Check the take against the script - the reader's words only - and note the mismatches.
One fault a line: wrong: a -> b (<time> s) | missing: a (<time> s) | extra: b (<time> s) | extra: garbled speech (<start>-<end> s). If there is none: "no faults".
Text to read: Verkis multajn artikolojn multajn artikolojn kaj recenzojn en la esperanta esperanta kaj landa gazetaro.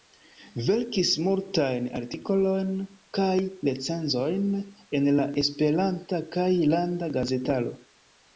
missing: multajn artikolojn (2.7 s)
missing: esperanta (6.2 s)